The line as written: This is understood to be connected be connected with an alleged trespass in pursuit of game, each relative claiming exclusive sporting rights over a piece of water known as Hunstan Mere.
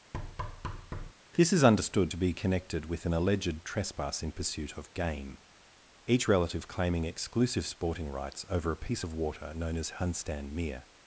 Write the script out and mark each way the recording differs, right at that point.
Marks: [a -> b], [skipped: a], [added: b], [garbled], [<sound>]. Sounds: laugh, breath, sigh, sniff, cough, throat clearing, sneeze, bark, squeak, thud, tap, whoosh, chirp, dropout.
[thud] This is understood to be connected [skipped: be connected] with an alleged trespass in pursuit of game, each relative claiming exclusive sporting rights over a piece of water known as Hunstan Mere.